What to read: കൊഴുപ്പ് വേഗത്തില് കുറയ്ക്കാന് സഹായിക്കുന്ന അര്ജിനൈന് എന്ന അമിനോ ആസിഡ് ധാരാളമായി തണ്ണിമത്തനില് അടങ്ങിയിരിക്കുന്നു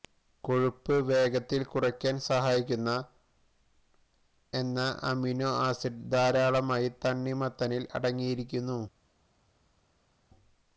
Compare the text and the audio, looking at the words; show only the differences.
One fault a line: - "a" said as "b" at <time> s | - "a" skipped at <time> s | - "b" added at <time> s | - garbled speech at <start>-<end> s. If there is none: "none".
- "അര്ജിനൈന്" skipped at 2.9 s